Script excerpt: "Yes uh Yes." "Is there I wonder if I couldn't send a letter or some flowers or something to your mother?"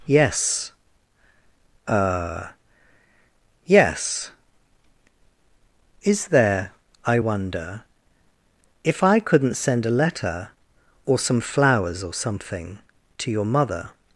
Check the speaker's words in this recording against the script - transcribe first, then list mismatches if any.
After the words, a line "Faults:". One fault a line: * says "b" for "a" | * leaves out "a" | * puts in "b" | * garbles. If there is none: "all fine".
"Yes uh Yes." "Is there I wonder if I couldn't send a letter or some flowers or something to your mother?"
Faults:
all fine